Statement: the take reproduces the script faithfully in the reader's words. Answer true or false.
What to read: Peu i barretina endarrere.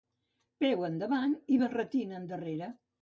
false